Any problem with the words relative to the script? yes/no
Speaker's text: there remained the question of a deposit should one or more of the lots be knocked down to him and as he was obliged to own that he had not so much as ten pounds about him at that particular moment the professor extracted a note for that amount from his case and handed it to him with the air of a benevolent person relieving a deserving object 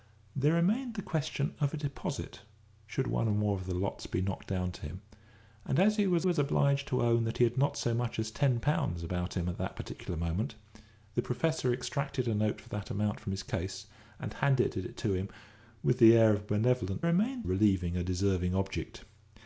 yes